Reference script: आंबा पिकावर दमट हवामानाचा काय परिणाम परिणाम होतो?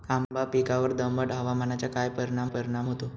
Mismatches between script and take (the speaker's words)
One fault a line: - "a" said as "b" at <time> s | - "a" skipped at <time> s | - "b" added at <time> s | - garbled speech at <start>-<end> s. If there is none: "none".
none